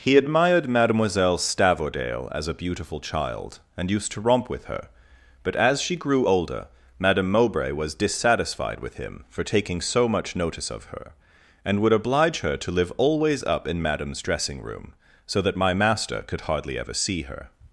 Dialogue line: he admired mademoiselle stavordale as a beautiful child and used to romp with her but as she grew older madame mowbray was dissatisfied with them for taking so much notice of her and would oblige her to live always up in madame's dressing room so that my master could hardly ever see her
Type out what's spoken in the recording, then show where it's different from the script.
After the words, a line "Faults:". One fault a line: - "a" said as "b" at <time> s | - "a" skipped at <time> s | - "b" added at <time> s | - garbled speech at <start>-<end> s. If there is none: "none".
he admired mademoiselle stavordale as a beautiful child and used to romp with her but as she grew older madame mowbray was dissatisfied with him for taking so much notice of her and would oblige her to live always up in madame's dressing room so that my master could hardly ever see her
Faults:
- "them" said as "him" at 9.0 s